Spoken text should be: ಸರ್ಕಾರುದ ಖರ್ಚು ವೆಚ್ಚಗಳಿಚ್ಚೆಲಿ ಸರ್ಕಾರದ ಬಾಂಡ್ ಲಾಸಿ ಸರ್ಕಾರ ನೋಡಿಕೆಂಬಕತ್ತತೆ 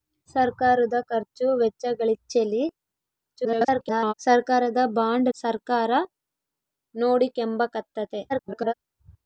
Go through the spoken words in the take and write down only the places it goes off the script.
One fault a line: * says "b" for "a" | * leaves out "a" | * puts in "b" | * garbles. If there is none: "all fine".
* garbles
* leaves out "ಲಾಸಿ"
* garbles